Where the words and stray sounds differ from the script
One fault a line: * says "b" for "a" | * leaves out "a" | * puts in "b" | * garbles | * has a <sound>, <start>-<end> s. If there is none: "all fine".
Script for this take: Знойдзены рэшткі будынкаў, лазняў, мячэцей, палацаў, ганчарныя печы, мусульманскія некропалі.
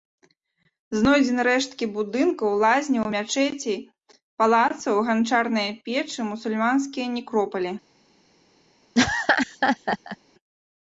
* has a laugh, 8.9-10.2 s